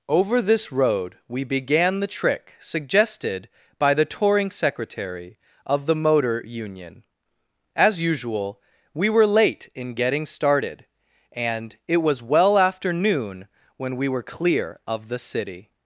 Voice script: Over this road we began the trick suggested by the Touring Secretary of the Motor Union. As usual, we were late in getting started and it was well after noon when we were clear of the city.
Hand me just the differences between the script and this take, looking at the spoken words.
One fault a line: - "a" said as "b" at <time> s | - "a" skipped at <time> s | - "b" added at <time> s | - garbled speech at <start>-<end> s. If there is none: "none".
none